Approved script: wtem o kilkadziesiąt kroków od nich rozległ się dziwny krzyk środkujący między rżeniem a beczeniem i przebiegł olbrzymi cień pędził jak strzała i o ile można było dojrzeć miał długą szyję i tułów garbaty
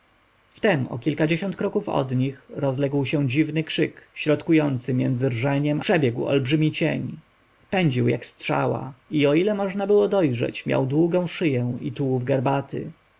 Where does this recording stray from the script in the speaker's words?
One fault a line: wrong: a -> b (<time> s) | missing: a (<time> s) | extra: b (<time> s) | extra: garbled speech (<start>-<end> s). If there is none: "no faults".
missing: a beczeniem i (5.8 s)